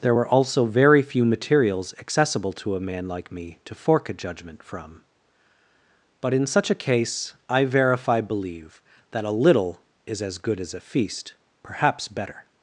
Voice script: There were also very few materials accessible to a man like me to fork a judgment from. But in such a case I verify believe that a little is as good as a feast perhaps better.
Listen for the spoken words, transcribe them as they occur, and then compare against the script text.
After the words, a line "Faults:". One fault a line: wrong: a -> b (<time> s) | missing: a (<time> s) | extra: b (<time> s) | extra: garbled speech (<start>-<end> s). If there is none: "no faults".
There were also very few materials accessible to a man like me to fork a judgment from. But in such a case I verify believe that a little is as good as a feast perhaps better.
Faults:
no faults